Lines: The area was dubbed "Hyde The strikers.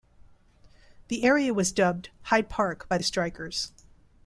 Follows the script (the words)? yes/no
no